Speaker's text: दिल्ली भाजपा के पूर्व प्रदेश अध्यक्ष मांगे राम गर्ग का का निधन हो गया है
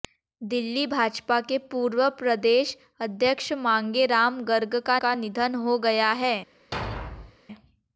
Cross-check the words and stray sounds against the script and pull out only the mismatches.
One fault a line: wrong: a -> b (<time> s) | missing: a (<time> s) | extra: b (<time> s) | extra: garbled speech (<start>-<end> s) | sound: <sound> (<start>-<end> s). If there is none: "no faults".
sound: thud (6.7-7.4 s)